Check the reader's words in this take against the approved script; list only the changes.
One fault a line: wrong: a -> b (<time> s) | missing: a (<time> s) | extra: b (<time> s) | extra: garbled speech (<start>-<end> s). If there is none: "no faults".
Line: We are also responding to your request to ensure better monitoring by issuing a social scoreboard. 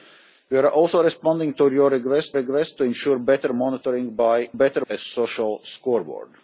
extra: request (2.3 s)
wrong: issuing -> better (4.5 s)